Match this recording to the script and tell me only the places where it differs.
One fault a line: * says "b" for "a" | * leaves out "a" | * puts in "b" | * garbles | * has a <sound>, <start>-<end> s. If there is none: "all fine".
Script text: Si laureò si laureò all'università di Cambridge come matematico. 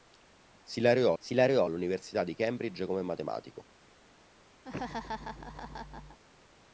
* has a laugh, 4.6-6.2 s